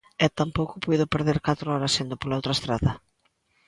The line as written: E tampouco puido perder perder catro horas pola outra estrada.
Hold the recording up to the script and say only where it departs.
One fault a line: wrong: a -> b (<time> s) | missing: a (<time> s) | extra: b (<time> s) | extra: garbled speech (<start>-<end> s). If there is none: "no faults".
missing: perder (1.4 s)
extra: indo (2.0 s)